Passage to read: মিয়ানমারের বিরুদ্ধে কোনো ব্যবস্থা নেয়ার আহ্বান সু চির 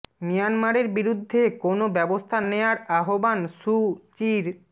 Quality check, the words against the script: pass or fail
pass